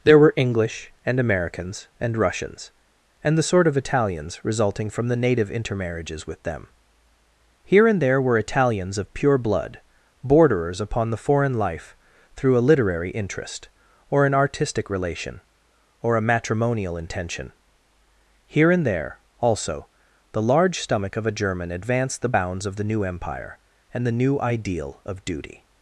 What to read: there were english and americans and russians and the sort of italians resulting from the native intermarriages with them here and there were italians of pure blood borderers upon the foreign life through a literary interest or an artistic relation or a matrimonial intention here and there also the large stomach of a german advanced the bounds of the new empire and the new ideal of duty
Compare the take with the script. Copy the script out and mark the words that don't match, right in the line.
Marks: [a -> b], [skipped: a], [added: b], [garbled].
there were english and americans and russians and the sort of italians resulting from the native intermarriages with them here and there were italians of pure blood borderers upon the foreign life through a literary interest or an artistic relation or a matrimonial intention here and there also the large stomach of a german advanced the bounds of the new empire and the new ideal of duty